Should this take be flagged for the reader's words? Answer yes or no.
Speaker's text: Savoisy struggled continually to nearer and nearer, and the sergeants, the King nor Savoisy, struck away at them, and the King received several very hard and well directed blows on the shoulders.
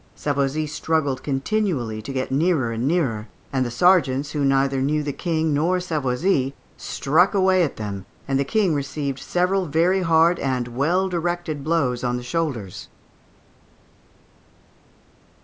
yes